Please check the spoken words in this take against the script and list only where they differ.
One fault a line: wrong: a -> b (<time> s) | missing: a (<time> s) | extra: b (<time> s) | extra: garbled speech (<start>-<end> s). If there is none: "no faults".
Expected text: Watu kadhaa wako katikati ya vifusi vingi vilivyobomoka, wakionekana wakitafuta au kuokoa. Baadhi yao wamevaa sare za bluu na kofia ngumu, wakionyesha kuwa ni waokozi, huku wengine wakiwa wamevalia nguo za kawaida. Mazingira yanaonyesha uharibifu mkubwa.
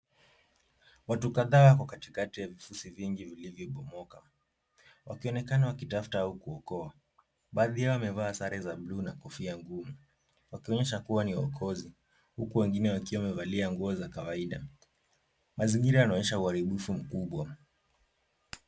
no faults